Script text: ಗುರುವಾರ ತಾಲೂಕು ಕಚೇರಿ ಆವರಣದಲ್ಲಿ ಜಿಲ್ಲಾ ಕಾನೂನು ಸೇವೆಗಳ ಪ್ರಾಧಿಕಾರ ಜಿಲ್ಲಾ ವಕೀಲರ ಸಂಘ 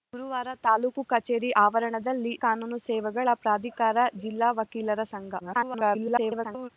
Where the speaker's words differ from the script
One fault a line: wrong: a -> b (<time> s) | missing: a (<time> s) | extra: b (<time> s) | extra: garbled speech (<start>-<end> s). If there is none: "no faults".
missing: ಜಿಲ್ಲಾ (2.3 s)
extra: garbled speech (5.4-6.7 s)